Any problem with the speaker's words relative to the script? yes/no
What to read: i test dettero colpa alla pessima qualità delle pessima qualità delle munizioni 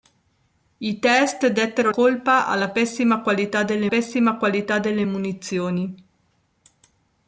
no